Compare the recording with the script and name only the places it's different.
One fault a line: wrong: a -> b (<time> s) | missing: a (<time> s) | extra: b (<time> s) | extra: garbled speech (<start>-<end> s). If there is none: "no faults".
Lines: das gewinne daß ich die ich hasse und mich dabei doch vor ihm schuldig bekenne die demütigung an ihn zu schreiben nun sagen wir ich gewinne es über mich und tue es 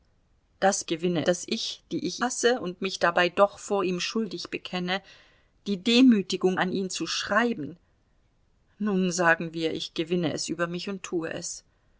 no faults